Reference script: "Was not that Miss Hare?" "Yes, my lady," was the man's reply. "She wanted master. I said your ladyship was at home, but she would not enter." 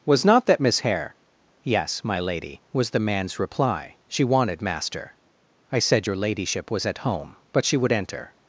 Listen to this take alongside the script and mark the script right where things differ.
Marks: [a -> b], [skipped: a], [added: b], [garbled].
"Was not that Miss Hare?" "Yes, my lady," was the man's reply. "She wanted master. I said your ladyship was at home, but she would [skipped: not] enter."